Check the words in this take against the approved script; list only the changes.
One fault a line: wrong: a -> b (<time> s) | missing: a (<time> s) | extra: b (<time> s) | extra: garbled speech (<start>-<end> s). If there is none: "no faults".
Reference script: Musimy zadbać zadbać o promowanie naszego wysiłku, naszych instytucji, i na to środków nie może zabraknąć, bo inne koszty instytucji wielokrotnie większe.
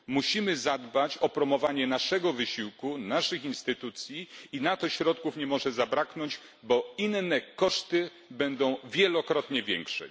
missing: zadbać (1.2 s)
wrong: instytucji -> będą (8.3 s)